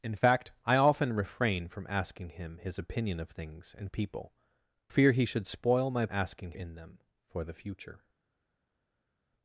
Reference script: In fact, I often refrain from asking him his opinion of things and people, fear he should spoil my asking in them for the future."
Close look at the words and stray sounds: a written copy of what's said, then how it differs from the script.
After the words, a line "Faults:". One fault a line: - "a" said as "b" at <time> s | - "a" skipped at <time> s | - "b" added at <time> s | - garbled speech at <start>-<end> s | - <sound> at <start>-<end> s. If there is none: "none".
In fact, I often refrain from asking him his opinion of things and people, fear he should spoil my asking in them for the future."
Faults:
none